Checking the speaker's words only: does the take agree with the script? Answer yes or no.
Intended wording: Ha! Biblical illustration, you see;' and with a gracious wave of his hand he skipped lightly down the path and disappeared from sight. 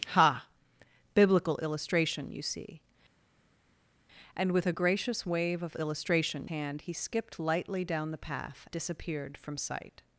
no